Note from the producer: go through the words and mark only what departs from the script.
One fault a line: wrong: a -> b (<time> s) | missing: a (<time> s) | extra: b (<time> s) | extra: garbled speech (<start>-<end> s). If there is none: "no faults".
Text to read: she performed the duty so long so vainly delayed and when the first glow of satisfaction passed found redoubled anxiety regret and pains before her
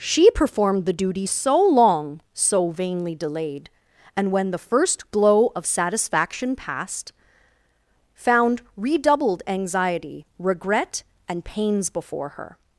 no faults